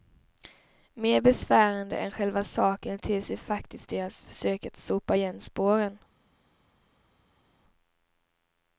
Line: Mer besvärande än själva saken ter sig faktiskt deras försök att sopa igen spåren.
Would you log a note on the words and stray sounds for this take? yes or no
no